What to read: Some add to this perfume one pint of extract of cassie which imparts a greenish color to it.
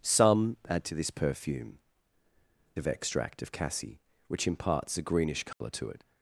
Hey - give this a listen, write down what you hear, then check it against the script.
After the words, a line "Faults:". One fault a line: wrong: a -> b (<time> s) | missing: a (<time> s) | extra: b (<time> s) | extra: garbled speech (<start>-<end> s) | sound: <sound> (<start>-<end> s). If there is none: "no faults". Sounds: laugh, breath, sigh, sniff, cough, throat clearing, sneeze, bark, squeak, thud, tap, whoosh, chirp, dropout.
Some add to this perfume of extract of cassie which imparts a greenish color to it.
Faults:
missing: one pint (1.8 s)
sound: dropout (5.5-5.6 s)